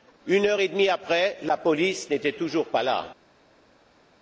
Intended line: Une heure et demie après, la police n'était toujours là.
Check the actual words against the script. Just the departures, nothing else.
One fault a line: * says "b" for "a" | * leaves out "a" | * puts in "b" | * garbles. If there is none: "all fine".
* puts in "pas"